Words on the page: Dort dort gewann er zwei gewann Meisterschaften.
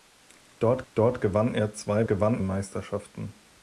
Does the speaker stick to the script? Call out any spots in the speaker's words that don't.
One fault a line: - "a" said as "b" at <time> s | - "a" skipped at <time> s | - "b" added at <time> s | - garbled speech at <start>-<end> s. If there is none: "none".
none